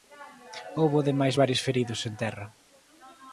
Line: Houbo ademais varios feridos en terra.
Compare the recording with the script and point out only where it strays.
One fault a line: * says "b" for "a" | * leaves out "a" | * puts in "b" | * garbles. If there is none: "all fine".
all fine